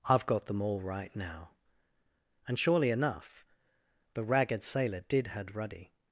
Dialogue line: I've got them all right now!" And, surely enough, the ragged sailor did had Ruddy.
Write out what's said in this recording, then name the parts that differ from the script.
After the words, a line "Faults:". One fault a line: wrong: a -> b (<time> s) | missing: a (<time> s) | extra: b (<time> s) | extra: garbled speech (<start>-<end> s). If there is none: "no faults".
I've got them all right now!" And, surely enough, the ragged sailor did had Ruddy.
Faults:
no faults